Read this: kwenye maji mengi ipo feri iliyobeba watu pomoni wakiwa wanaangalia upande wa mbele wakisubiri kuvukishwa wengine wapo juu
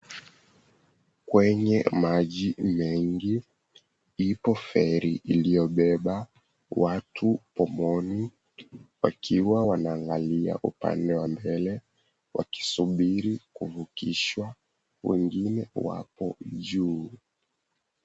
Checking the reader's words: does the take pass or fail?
pass